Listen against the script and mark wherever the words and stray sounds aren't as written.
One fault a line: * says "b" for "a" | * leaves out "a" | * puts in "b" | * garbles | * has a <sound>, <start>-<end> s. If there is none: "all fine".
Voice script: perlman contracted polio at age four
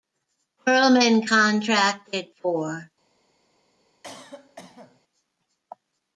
* leaves out "polio at age"
* has a cough, 4.0-5.0 s